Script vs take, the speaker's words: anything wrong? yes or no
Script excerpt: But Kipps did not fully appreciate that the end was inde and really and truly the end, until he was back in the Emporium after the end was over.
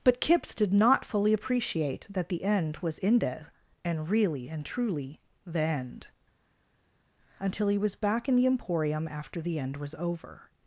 no